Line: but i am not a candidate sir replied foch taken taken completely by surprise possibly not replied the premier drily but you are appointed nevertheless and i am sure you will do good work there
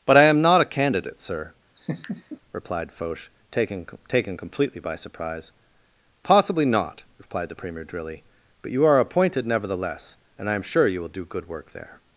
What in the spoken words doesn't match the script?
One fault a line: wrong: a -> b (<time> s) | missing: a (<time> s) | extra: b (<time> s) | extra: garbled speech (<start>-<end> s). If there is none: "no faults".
no faults